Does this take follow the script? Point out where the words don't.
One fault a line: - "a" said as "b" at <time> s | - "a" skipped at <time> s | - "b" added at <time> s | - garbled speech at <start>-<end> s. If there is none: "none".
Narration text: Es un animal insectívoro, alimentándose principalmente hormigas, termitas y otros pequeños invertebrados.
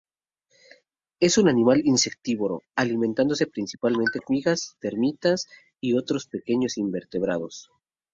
none